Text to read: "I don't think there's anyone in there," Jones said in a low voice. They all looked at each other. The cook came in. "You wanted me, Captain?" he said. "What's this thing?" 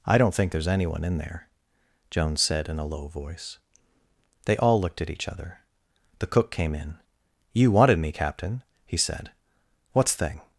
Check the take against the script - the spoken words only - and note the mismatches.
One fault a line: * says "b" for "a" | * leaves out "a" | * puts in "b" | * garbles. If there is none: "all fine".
* leaves out "this"